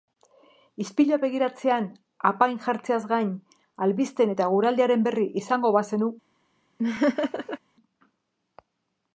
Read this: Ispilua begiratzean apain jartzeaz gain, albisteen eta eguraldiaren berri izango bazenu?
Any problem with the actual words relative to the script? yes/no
no